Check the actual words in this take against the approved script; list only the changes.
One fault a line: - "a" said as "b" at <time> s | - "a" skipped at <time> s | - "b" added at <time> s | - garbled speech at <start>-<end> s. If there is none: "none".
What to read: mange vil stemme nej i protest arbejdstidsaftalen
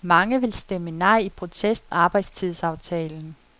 none